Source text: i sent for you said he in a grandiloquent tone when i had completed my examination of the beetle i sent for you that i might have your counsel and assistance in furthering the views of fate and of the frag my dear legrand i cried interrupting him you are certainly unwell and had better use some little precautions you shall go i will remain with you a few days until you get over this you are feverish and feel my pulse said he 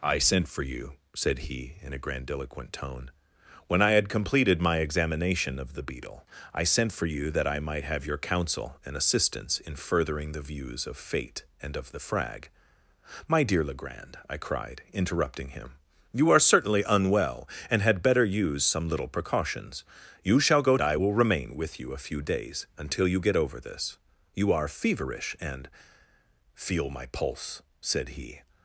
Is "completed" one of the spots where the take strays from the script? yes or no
no